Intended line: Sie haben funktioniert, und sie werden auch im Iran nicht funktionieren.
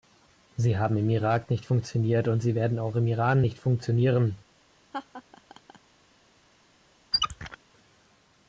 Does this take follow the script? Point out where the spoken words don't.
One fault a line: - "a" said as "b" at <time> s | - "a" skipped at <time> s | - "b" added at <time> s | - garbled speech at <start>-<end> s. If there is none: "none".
- "im Irak nicht" added at 1.0 s